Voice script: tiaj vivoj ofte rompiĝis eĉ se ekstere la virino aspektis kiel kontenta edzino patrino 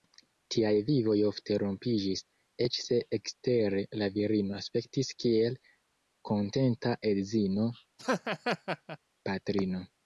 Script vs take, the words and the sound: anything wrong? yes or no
yes